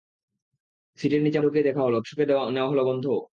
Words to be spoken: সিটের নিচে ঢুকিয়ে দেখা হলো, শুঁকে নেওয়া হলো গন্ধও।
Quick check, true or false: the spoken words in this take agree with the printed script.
true